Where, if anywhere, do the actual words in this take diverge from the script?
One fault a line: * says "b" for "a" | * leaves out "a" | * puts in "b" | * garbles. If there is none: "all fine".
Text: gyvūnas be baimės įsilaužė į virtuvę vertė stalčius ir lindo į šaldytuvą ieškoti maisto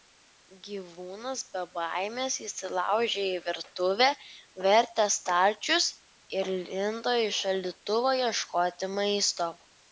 all fine